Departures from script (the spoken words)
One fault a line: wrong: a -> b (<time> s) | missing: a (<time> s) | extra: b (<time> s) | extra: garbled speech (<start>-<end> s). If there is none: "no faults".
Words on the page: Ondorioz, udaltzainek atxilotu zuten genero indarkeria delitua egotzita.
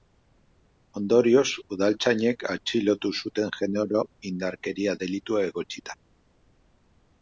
no faults